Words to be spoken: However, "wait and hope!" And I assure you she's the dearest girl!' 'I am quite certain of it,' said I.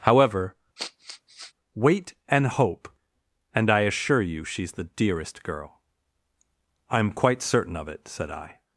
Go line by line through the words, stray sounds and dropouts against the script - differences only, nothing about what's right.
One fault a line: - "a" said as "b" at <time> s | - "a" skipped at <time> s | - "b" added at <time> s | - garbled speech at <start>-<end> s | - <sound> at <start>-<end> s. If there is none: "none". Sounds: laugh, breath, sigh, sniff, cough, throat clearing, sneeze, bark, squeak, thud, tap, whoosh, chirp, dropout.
- sniff at 0.8-1.5 s